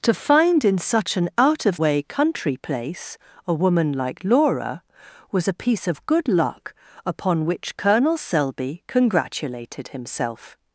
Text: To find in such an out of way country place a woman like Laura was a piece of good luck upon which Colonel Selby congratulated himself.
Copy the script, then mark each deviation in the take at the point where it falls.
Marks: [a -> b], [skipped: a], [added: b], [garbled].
To find in such an out of way country place a woman like Laura was a piece of good luck upon which Colonel Selby congratulated himself.